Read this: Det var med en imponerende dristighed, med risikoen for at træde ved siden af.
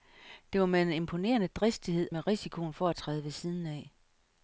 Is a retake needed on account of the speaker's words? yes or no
no